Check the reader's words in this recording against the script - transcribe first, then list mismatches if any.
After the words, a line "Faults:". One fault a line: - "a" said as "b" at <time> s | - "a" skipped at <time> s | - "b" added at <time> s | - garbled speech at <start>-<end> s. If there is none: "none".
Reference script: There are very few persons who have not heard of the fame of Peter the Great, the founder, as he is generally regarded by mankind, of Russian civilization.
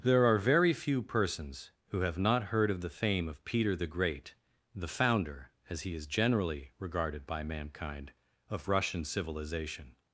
There are very few persons who have not heard of the fame of Peter the Great, the founder, as he is generally regarded by mankind, of Russian civilization.
Faults:
none